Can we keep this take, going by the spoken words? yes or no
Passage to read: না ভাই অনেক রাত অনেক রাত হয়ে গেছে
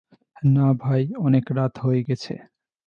no